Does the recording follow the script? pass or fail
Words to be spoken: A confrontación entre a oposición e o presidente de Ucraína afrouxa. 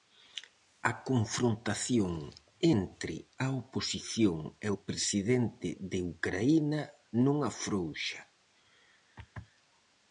fail